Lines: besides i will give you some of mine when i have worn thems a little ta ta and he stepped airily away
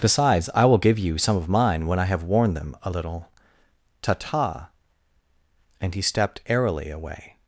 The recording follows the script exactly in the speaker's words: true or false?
false